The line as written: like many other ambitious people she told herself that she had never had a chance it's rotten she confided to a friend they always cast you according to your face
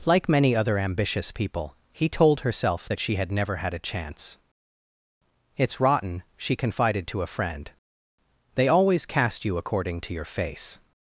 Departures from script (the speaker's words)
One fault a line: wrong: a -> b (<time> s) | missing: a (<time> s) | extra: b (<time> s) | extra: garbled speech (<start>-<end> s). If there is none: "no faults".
wrong: she -> he (1.9 s)